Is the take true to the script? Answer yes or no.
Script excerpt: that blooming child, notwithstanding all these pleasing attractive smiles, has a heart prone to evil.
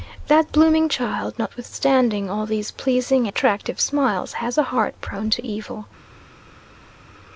yes